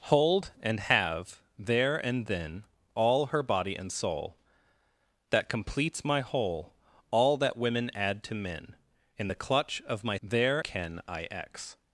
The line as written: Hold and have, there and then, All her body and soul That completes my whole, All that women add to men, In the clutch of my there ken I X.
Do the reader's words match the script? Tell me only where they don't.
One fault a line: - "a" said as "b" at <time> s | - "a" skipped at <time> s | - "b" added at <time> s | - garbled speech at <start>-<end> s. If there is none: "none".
none